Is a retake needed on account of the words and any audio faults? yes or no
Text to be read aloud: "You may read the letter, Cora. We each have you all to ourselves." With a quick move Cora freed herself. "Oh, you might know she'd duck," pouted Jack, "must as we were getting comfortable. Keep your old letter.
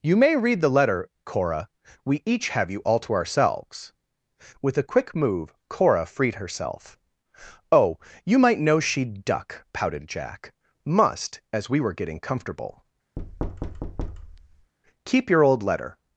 yes